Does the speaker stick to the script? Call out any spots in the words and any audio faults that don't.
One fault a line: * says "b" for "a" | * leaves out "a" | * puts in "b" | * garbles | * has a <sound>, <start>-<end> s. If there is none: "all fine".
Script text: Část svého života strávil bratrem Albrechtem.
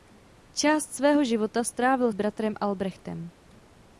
all fine